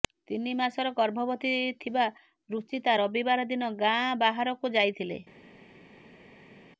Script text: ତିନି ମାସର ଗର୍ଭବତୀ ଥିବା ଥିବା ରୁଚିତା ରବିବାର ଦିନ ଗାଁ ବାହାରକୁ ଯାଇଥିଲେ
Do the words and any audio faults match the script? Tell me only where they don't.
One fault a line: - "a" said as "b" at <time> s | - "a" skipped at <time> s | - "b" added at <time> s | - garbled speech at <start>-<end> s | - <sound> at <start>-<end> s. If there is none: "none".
- "ଥିବା" skipped at 2.1 s